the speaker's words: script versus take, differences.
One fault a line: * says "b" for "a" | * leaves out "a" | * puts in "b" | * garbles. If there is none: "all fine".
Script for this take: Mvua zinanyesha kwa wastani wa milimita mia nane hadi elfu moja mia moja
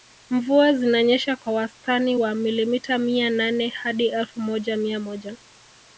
all fine